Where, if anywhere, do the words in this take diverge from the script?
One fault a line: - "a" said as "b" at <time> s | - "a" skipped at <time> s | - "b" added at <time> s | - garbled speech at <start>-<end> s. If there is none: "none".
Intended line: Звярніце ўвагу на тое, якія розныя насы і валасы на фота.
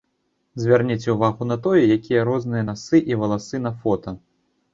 none